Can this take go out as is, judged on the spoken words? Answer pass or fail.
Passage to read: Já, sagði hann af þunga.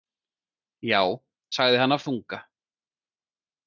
pass